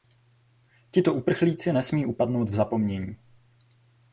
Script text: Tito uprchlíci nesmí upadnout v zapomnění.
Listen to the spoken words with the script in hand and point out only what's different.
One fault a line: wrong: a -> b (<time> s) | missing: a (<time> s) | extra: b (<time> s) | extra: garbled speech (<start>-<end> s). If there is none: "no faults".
no faults